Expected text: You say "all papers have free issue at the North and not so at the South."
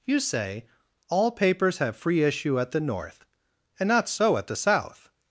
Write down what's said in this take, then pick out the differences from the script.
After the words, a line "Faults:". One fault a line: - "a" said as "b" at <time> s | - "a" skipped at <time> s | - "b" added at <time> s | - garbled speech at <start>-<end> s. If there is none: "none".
You say "all papers have free issue at the North and not so at the South."
Faults:
none